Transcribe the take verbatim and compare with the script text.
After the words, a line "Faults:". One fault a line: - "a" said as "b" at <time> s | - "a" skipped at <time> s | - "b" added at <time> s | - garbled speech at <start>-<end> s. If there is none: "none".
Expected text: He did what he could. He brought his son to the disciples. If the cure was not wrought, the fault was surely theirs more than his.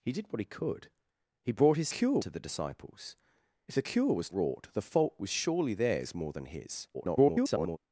He did what he could. He brought his cure to the disciples. If the cure was wrought, the fault was surely theirs more than his. [garbled]
Faults:
- "son" said as "cure" at 1.9 s
- "not" skipped at 4.3 s
- garbled speech at 6.9-7.8 s